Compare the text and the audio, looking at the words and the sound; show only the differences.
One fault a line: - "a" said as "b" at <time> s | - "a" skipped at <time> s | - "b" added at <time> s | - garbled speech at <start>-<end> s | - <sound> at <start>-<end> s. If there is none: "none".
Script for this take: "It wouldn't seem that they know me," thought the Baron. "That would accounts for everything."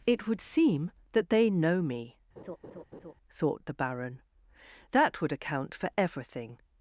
- "wouldn't" said as "would" at 0.3 s
- laugh at 2.4-3.1 s
- "accounts" said as "account" at 5.3 s